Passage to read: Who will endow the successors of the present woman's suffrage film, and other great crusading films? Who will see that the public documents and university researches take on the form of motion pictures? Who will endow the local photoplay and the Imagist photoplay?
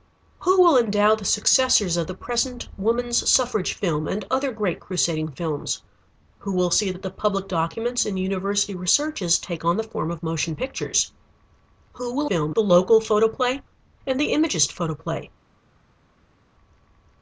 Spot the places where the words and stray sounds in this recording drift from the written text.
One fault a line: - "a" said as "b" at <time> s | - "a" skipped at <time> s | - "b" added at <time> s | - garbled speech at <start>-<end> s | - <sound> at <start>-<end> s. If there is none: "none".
- "endow" said as "film" at 12.2 s